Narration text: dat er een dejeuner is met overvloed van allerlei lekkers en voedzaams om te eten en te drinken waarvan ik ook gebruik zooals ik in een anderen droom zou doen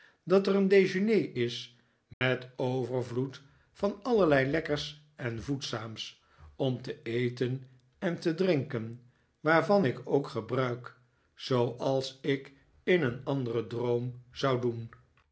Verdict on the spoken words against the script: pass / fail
pass